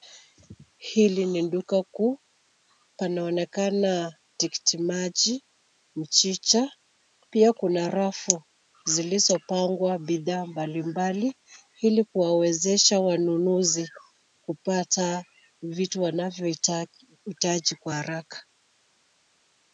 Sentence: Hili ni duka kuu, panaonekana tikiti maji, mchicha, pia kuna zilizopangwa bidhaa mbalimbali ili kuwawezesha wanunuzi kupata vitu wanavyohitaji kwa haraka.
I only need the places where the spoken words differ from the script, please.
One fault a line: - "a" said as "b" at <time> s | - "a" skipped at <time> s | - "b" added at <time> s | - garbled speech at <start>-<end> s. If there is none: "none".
- "rafu" added at 7.9 s